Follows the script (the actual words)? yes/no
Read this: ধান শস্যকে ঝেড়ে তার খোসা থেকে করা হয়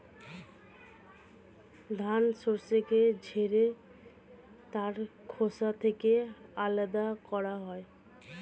no